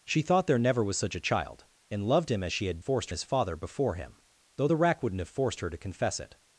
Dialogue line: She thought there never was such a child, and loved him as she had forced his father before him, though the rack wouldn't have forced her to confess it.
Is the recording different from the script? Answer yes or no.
no